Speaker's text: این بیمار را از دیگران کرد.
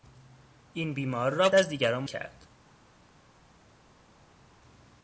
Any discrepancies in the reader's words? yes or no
no